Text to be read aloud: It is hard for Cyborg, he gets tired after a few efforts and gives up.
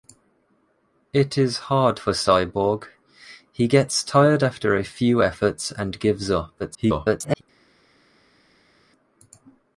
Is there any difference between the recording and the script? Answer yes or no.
yes